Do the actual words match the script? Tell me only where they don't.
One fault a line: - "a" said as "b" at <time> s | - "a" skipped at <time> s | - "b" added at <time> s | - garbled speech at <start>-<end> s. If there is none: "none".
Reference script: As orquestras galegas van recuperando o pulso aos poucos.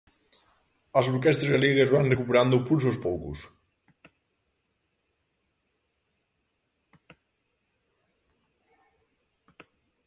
none